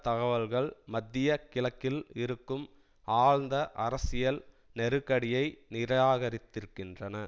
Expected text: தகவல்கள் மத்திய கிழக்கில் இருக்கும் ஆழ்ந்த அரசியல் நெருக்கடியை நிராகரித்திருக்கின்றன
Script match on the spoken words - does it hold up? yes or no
yes